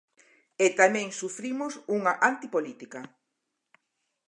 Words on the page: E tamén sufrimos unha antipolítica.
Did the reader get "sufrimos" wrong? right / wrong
right